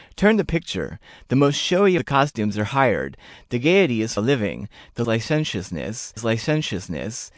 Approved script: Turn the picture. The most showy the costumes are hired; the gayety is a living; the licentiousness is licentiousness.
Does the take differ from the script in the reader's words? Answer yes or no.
no